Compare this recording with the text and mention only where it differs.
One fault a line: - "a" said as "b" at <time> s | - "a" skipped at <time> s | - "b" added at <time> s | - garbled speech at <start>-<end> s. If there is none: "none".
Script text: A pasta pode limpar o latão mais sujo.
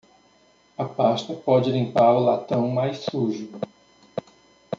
none